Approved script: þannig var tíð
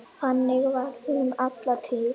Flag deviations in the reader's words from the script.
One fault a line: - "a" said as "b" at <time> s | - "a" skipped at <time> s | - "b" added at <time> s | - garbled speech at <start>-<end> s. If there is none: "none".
- "hún alla" added at 1.1 s